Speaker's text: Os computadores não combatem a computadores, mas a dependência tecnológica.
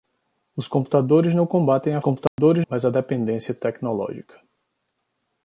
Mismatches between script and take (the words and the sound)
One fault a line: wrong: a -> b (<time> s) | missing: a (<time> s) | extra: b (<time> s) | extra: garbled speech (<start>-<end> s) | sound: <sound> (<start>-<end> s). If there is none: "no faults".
sound: dropout (2.3-2.4 s)